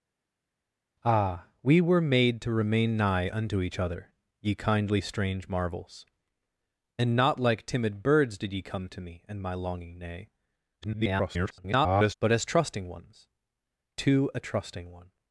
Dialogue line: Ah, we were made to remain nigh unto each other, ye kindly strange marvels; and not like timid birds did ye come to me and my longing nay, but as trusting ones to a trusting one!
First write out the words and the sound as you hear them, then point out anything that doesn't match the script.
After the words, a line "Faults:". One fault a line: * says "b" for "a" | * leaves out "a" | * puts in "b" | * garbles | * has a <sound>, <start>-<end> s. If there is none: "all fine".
Ah, we were made to remain nigh unto each other, ye kindly strange marvels; and not like timid birds did ye come to me and my longing nay, [garbled] but as trusting ones to a trusting one!
Faults:
* garbles